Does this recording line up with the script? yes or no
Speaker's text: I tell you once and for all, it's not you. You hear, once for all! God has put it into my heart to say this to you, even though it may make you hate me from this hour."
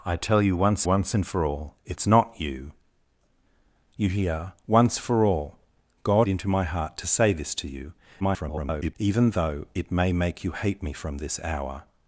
no